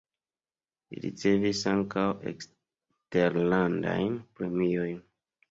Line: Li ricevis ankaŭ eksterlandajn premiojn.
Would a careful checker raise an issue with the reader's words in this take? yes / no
no